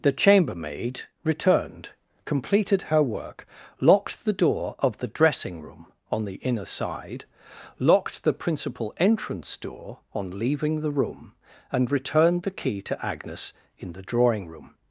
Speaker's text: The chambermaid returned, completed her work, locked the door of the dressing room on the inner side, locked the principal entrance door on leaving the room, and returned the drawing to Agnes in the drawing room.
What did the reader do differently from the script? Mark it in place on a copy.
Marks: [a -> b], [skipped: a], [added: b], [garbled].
The chambermaid returned, completed her work, locked the door of the dressing room on the inner side, locked the principal entrance door on leaving the room, and returned the [drawing -> key] to Agnes in the drawing room.